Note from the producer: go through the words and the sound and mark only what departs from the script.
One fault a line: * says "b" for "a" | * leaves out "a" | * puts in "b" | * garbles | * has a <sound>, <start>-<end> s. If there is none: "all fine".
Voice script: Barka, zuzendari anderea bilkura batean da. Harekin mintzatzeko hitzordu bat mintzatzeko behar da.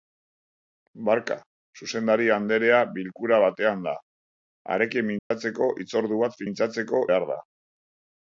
* has a dropout, 5.2-5.3 s